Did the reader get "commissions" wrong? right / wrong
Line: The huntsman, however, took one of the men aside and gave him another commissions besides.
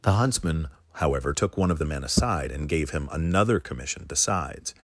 wrong